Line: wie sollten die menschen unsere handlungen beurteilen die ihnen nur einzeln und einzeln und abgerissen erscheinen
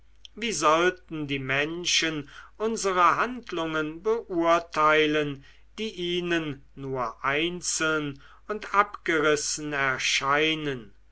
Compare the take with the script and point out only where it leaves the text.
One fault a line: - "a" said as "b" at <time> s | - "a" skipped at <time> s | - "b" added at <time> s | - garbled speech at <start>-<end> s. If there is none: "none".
- "einzeln und" skipped at 8.7 s